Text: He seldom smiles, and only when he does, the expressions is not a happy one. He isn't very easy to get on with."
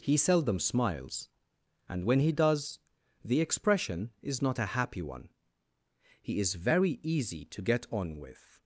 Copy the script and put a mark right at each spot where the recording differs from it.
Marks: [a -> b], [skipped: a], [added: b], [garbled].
He seldom smiles, and [skipped: only] when he does, the [expressions -> expression] is not a happy one. He [isn't -> is] very easy to get on with."